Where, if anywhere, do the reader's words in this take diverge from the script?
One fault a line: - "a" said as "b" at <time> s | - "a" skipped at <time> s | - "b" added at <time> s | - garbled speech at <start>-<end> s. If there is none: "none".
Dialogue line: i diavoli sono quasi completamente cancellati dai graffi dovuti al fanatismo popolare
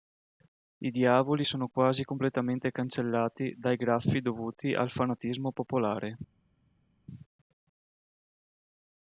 none